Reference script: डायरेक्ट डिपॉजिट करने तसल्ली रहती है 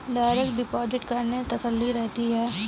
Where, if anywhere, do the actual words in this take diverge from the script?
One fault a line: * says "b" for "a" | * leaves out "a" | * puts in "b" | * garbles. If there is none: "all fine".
all fine